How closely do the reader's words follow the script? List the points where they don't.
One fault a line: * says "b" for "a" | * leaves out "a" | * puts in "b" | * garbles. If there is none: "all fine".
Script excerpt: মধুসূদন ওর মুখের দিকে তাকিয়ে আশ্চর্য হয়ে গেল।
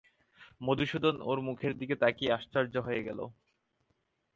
all fine